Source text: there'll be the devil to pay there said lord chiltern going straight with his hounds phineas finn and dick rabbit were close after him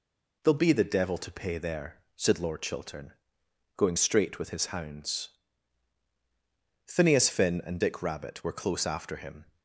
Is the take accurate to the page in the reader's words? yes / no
yes